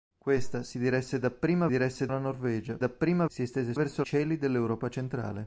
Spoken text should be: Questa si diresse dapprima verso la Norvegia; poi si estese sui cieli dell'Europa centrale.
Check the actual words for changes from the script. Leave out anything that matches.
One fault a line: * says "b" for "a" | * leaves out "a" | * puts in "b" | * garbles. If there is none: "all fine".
* says "diresse" for "verso"
* says "dapprima" for "poi"
* says "verso" for "sui"